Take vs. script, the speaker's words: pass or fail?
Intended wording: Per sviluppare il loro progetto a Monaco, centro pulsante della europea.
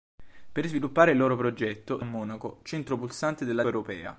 pass